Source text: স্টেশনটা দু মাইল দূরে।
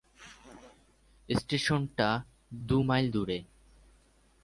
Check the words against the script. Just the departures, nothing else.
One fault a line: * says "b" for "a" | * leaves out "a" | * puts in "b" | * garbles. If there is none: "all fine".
all fine